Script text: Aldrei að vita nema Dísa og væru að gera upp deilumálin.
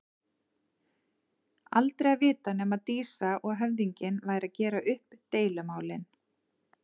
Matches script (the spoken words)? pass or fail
fail